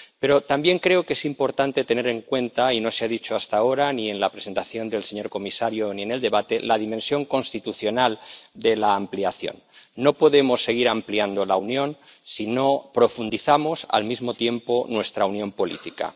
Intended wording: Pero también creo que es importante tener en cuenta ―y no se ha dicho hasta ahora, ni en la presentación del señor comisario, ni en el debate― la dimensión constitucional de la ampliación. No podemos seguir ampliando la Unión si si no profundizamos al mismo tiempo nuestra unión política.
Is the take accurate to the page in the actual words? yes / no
no